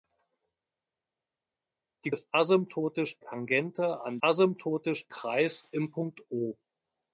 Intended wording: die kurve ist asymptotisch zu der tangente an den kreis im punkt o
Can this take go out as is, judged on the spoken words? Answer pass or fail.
fail